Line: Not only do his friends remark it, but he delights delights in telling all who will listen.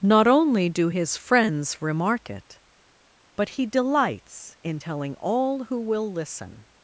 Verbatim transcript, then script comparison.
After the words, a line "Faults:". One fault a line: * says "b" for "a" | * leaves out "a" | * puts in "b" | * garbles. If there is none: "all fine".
Not only do his friends remark it, but he delights in telling all who will listen.
Faults:
* leaves out "delights"